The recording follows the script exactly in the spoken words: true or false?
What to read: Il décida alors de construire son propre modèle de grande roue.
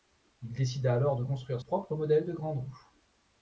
false